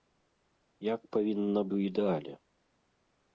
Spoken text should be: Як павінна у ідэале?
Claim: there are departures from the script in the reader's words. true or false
false